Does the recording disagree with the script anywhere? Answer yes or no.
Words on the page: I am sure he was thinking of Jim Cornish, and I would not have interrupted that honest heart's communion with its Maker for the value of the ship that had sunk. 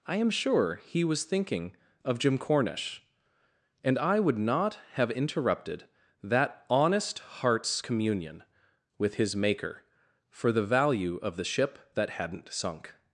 yes